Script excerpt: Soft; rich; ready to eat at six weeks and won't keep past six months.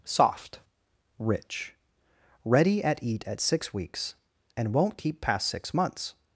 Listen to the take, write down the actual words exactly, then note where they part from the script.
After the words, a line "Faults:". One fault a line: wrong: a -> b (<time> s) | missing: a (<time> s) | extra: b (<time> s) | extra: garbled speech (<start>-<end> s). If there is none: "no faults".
Soft; rich; ready at eat at six weeks and won't keep past six months.
Faults:
wrong: to -> at (2.8 s)